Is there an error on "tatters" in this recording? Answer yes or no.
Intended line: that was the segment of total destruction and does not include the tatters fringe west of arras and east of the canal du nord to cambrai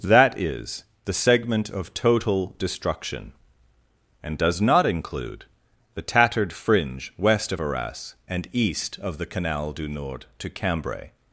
yes